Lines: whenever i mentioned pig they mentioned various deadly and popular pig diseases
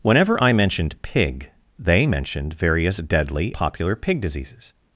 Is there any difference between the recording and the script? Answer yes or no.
yes